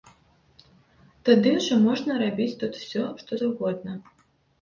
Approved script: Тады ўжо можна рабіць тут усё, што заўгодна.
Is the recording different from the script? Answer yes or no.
no